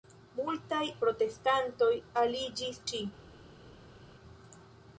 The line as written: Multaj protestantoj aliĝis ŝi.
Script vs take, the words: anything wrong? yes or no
no